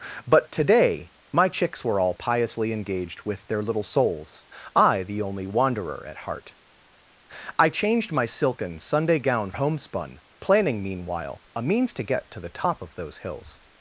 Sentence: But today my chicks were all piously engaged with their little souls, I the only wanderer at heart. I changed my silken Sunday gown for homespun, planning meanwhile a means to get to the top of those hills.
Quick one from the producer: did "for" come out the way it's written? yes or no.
no